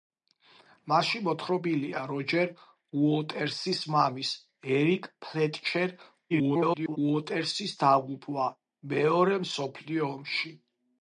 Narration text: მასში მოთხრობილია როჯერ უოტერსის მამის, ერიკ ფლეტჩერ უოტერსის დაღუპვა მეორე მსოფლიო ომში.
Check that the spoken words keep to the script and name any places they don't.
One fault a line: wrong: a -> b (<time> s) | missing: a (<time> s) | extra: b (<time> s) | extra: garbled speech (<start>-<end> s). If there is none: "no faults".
extra: garbled speech (6.3-7.0 s)